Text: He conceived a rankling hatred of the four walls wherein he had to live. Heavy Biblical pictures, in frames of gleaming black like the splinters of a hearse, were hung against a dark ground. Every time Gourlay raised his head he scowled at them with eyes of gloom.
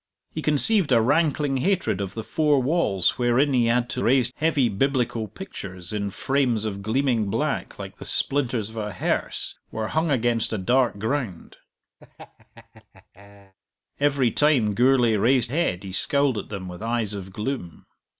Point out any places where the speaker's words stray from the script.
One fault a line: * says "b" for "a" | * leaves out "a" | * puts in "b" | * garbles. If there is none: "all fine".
* says "raised" for "live"
* leaves out "his"